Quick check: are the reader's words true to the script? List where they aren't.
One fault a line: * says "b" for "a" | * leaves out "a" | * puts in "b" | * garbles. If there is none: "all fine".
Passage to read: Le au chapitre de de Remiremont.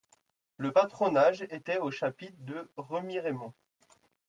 * puts in "patronage était"
* leaves out "de"